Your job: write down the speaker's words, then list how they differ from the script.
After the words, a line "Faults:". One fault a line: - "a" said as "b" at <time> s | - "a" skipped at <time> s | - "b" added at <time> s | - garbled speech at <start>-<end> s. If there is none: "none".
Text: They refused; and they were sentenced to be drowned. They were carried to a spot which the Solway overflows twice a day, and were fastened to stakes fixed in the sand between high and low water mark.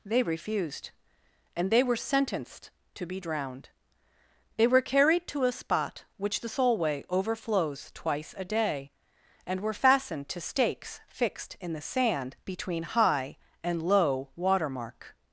They refused; and they were sentenced to be drowned. They were carried to a spot which the Solway overflows twice a day, and were fastened to stakes fixed in the sand between high and low water mark.
Faults:
none